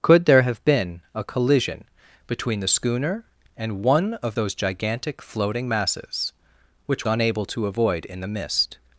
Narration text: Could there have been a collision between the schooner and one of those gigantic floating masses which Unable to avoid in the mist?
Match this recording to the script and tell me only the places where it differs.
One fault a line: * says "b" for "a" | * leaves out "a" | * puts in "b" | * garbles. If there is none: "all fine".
all fine